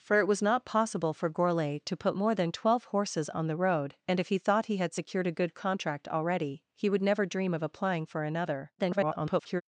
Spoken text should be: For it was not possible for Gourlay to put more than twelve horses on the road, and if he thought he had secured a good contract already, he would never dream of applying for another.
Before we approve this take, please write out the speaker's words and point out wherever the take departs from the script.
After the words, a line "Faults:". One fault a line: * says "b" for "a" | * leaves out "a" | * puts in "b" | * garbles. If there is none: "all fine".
For it was not possible for Gourlay to put more than twelve horses on the road, and if he thought he had secured a good contract already, he would never dream of applying for another. [garbled]
Faults:
* garbles